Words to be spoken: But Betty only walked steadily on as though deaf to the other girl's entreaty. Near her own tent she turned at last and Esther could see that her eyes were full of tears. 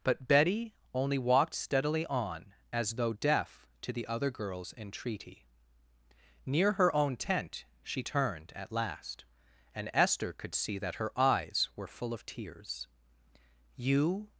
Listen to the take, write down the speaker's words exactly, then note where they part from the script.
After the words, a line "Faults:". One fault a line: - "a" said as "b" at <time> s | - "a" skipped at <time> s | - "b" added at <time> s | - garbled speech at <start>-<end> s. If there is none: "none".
But Betty only walked steadily on as though deaf to the other girl's entreaty. Near her own tent she turned at last and Esther could see that her eyes were full of tears. "You
Faults:
- "You" added at 13.8 s